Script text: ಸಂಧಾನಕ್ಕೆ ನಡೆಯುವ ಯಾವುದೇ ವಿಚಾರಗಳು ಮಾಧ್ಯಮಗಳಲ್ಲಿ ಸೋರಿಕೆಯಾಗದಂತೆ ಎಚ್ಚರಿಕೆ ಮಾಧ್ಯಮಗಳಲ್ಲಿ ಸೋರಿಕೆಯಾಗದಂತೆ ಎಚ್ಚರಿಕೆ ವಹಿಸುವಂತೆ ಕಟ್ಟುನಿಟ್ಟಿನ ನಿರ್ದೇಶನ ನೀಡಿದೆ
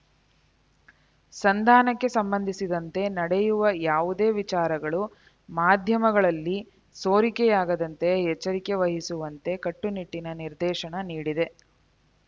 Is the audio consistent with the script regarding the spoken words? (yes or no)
no